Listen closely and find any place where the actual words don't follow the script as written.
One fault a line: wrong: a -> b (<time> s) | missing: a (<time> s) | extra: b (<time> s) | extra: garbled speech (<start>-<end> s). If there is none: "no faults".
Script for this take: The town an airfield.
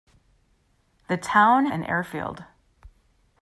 no faults